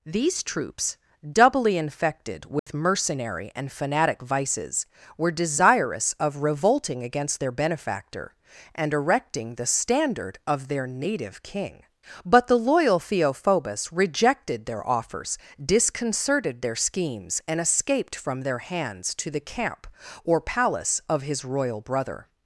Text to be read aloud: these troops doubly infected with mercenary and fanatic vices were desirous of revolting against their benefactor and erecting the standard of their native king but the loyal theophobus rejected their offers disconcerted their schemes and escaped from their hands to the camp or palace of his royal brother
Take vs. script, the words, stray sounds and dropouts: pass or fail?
fail